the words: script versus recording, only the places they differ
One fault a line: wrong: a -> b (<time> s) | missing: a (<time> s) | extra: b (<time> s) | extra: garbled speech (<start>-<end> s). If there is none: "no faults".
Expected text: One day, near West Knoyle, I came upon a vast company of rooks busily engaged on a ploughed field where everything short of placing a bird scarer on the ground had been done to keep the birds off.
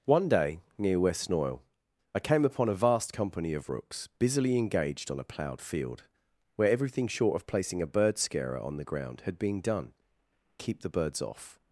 missing: to (9.9 s)